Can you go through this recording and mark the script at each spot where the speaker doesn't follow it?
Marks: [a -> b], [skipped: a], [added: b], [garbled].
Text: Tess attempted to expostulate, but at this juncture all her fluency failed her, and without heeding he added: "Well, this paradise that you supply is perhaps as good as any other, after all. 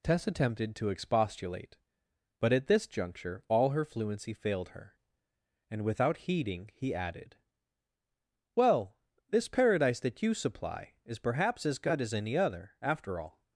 Tess attempted to expostulate, but at this juncture all her fluency failed her, and without heeding he added: "Well, this paradise that you supply is perhaps as good as any other, after all.